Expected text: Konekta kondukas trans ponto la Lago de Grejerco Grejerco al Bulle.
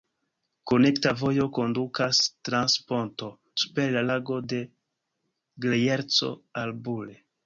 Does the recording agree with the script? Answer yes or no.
no